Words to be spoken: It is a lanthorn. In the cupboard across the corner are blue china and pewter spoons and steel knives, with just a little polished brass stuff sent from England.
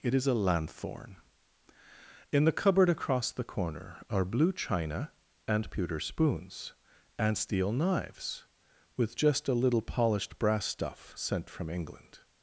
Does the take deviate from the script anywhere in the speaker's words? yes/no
no